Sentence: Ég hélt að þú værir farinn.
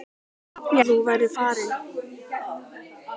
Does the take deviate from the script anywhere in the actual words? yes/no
yes